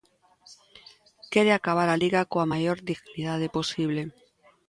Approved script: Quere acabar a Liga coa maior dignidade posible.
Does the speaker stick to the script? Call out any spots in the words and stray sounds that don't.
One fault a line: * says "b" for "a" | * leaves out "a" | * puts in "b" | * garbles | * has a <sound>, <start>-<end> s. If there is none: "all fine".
all fine